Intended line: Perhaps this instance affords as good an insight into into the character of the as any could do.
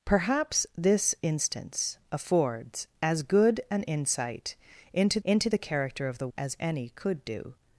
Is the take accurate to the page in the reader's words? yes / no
yes